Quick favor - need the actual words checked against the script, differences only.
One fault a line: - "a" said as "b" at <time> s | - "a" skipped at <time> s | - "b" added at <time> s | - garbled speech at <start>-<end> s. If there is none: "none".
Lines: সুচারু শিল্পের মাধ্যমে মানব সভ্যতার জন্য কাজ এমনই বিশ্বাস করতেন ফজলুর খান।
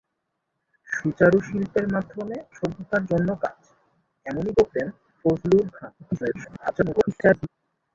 - "মানব" skipped at 2.4 s
- "বিশ্বাস" skipped at 4.5 s
- garbled speech at 6.0-7.5 s